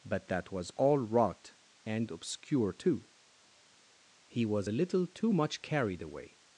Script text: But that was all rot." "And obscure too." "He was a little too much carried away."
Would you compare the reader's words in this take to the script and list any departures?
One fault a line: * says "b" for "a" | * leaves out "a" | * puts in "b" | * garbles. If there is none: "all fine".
all fine